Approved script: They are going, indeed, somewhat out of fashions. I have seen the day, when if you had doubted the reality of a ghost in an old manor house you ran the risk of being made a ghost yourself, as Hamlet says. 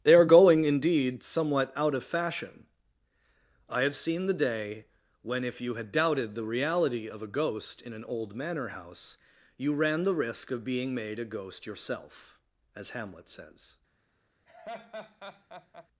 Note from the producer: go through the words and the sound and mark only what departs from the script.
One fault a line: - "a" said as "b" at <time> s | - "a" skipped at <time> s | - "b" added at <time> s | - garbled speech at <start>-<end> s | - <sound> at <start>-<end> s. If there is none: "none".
- "fashions" said as "fashion" at 2.0 s
- laugh at 14.5-15.9 s